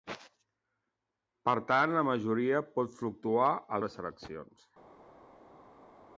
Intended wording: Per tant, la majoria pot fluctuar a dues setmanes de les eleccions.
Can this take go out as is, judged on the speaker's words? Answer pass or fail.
fail